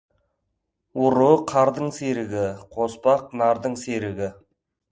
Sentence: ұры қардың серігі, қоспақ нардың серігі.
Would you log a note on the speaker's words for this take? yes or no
no